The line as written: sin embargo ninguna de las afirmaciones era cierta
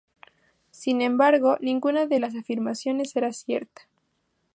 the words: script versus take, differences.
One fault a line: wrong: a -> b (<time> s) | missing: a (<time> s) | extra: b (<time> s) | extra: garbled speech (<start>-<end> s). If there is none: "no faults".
no faults